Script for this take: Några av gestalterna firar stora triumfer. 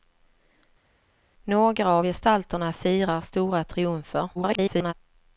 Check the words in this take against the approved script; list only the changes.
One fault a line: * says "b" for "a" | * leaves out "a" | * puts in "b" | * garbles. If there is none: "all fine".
* garbles